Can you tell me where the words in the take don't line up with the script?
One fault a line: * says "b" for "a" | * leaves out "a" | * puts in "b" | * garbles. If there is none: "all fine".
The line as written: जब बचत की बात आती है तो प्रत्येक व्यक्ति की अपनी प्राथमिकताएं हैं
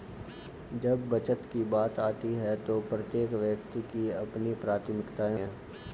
all fine